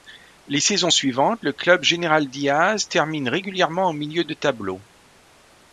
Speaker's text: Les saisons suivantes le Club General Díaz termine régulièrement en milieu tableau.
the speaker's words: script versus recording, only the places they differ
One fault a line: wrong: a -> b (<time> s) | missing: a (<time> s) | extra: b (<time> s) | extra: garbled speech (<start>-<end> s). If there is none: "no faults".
extra: de (4.2 s)